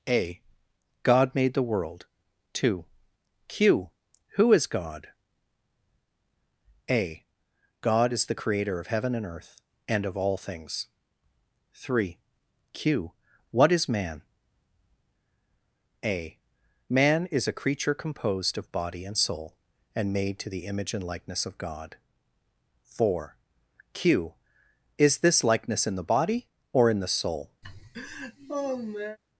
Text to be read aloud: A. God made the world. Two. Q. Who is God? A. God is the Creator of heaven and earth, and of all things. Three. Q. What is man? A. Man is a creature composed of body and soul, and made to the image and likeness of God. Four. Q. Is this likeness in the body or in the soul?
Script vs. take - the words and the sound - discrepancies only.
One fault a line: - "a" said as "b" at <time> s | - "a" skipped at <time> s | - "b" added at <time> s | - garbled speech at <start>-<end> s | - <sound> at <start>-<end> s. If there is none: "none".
- laugh at 27.6-29.2 s